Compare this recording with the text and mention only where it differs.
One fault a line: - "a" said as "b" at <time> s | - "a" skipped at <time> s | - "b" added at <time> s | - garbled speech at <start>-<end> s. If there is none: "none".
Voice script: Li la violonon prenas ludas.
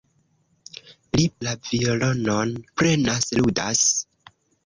none